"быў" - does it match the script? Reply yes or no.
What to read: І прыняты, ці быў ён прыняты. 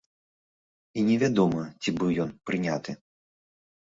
yes